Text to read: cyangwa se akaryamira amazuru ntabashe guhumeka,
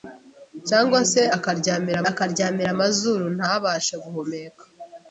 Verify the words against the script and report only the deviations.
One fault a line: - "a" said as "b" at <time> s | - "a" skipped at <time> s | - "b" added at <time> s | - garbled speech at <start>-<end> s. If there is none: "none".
- "akaryamira" added at 2.1 s